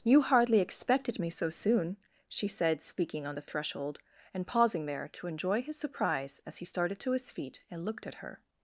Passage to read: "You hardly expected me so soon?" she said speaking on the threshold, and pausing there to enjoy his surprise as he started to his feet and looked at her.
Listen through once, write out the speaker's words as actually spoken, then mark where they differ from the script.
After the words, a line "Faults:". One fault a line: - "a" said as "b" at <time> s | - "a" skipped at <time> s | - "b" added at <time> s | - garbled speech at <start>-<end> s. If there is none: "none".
"You hardly expected me so soon?" she said speaking on the threshold, and pausing there to enjoy his surprise as he started to his feet and looked at her.
Faults:
none